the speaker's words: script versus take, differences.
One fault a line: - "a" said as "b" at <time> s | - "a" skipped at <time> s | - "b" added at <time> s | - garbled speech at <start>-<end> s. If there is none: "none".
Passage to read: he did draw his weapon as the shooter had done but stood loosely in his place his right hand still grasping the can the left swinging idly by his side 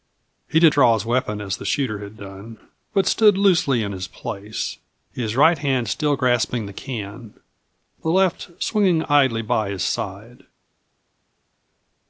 none